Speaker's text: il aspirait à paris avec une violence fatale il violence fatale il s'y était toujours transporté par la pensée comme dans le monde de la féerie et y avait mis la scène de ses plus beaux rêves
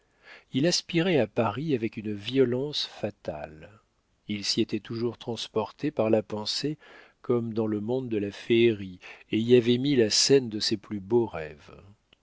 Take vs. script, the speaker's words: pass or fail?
fail